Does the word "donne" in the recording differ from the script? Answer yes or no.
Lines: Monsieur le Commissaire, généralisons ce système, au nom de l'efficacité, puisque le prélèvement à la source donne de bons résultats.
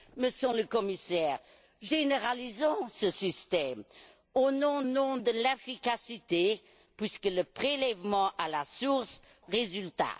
yes